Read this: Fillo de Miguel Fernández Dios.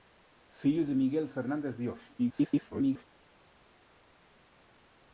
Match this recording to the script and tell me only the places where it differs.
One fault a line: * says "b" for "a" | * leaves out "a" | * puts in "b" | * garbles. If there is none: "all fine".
* garbles